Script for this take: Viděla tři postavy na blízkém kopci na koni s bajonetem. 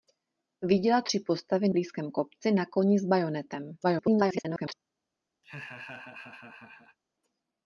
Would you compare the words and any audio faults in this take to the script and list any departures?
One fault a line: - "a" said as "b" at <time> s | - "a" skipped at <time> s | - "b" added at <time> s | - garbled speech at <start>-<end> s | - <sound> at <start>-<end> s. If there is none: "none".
- "na" skipped at 1.7 s
- garbled speech at 3.8-4.7 s
- laugh at 5.4-7.0 s